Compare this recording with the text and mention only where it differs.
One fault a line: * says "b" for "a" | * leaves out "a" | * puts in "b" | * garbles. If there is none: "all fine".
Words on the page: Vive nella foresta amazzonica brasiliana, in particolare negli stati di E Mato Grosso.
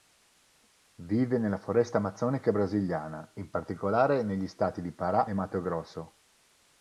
* puts in "Pará"